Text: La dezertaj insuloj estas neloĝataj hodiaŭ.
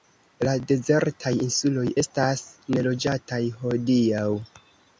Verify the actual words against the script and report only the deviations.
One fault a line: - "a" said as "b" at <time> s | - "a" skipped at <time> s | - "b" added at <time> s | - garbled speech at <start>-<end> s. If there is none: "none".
none